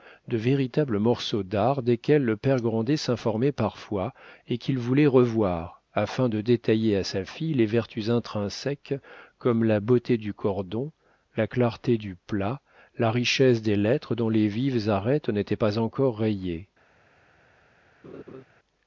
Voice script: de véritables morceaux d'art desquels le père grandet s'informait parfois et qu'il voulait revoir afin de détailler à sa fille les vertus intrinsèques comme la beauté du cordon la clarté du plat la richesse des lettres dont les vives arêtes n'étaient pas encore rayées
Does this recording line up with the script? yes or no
yes